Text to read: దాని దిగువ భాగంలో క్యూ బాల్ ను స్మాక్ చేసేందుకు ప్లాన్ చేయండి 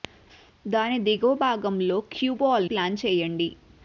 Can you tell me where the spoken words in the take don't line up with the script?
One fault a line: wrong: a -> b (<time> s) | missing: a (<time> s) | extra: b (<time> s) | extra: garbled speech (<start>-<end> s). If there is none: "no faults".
missing: ను స్మాక్ చేసేందుకు (2.7 s)